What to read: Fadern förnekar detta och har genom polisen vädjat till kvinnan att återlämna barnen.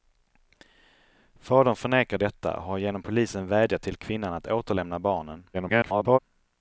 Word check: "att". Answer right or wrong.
right